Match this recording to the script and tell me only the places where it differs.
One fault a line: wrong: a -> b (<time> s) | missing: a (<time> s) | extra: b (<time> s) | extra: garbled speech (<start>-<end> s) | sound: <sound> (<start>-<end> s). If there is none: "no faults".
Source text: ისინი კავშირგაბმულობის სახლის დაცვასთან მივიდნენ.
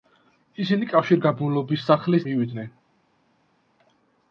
missing: დაცვასთან (2.3 s)